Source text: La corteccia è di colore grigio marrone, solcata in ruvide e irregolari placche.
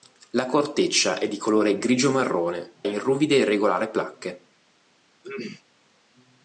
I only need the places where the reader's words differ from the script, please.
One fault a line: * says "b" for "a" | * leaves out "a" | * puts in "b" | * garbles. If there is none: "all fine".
* leaves out "solcata"